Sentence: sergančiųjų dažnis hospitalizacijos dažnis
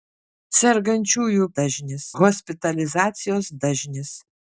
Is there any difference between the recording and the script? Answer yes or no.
no